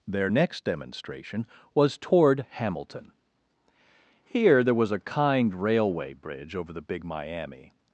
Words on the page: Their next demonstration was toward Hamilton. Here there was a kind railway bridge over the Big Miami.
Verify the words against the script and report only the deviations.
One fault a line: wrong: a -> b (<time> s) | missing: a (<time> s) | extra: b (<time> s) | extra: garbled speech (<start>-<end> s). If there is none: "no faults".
no faults